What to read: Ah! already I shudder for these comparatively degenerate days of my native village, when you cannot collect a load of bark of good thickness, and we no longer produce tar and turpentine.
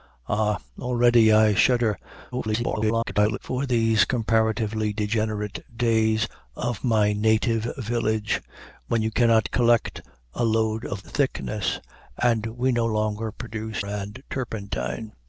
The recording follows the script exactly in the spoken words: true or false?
false